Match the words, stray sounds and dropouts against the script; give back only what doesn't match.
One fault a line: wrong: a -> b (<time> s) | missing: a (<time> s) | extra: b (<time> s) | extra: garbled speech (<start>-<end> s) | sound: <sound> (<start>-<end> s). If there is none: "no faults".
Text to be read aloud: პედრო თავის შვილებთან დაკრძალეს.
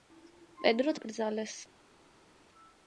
missing: თავის შვილებთან (0.9 s)